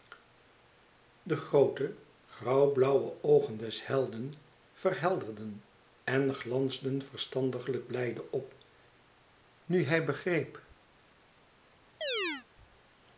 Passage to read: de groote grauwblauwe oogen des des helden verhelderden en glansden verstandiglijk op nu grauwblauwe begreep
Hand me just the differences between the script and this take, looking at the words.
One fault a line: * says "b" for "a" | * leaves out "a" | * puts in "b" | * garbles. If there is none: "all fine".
* leaves out "des"
* puts in "blijde"
* says "hij" for "grauwblauwe"